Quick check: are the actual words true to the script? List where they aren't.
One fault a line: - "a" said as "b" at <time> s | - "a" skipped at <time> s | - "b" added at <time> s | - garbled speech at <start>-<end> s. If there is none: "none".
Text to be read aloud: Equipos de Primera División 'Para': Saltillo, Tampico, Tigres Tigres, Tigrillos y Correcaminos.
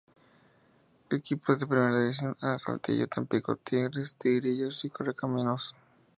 - "Para" said as "A" at 2.4 s
- "Tigres" skipped at 4.1 s